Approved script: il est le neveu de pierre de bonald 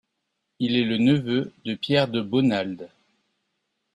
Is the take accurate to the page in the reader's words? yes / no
yes